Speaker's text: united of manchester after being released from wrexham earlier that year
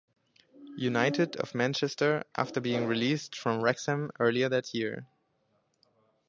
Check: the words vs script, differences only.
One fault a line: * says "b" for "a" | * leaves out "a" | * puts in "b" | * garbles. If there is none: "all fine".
all fine